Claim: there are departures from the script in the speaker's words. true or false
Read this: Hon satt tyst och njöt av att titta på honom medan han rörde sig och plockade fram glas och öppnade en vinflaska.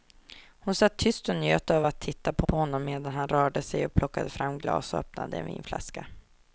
true